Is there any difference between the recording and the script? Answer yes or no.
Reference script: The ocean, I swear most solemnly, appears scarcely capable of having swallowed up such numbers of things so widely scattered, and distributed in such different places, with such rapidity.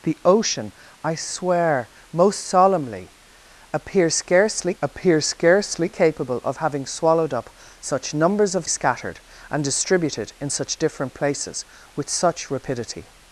yes